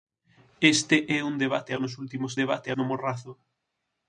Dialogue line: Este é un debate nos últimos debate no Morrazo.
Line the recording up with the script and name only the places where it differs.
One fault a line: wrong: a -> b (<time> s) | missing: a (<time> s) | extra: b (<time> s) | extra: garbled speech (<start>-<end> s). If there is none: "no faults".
no faults